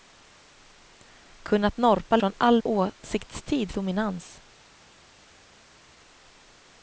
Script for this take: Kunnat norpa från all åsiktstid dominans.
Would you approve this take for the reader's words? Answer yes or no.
yes